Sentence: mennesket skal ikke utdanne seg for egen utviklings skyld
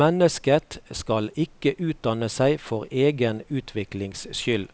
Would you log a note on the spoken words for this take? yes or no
no